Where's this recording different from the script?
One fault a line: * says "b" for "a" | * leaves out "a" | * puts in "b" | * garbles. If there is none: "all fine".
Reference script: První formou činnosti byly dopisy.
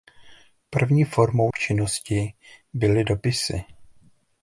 all fine